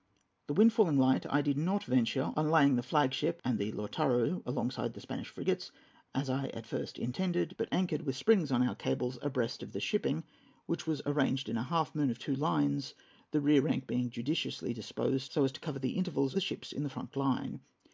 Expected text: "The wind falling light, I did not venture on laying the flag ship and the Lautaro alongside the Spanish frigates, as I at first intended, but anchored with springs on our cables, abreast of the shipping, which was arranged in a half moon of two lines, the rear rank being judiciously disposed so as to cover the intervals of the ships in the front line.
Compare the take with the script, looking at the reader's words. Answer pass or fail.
fail